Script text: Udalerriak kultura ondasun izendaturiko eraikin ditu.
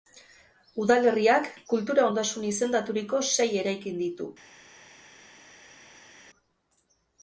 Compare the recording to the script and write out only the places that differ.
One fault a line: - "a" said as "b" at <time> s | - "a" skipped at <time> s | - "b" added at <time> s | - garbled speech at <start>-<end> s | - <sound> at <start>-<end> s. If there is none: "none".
- "sei" added at 3.3 s